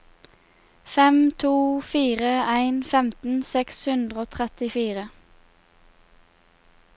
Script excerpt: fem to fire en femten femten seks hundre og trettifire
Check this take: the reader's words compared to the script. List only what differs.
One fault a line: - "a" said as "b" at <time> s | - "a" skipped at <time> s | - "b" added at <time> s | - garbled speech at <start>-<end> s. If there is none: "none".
- "femten" skipped at 3.4 s